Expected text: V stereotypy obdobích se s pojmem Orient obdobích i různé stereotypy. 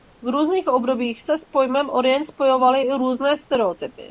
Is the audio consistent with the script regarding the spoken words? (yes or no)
no